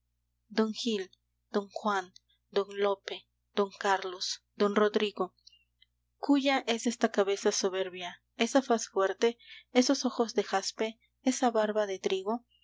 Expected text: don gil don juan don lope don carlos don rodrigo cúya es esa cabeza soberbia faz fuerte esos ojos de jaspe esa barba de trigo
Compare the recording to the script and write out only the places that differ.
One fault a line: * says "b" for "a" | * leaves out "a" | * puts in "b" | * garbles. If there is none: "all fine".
* says "esta" for "esa"
* puts in "esa"